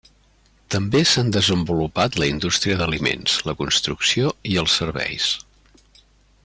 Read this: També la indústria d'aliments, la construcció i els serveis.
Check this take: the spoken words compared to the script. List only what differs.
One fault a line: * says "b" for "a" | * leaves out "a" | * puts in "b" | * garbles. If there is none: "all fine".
* puts in "s'han desenvolupat"